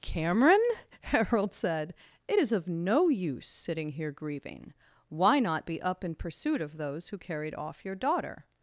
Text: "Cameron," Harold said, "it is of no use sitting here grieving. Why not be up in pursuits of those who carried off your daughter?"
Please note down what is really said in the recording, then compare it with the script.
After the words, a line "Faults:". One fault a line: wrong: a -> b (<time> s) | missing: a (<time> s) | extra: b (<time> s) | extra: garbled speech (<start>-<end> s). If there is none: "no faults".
"Cameron," Harold said, "it is of no use sitting here grieving. Why not be up in pursuit of those who carried off your daughter?"
Faults:
wrong: pursuits -> pursuit (6.1 s)